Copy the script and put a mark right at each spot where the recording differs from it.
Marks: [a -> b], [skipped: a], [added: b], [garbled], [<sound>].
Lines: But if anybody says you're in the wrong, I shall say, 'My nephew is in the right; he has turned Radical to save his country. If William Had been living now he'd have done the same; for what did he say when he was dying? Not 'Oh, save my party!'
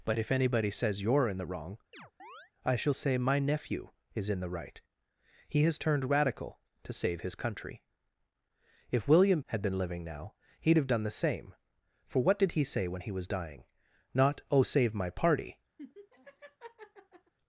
But if anybody says you're in the wrong, [chirp] I shall say, 'My nephew is in the right; he has turned Radical to save his country. If William Had been living now he'd have done the same; for what did he say when he was dying? Not 'Oh, save my party!' [laugh]